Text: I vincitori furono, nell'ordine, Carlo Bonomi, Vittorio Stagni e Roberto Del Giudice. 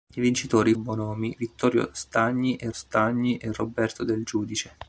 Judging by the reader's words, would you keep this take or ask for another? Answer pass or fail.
fail